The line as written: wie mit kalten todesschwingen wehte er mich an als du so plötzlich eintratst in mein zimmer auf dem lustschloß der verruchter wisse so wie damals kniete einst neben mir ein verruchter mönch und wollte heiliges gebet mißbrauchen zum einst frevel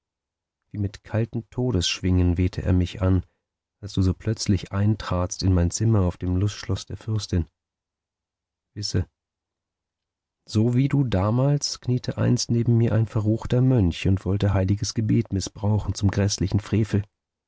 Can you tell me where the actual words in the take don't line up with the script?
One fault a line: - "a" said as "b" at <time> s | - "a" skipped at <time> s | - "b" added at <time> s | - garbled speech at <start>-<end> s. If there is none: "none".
- "verruchter" said as "fürstin" at 7.0 s
- "du" added at 10.9 s
- "einst" said as "gräßlichen" at 16.1 s